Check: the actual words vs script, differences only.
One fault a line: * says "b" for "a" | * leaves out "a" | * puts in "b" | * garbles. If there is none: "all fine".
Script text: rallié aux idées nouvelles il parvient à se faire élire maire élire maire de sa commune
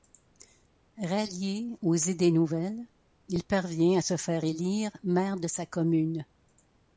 * leaves out "élire maire"